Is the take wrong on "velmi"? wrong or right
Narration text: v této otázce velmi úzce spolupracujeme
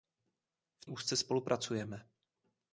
wrong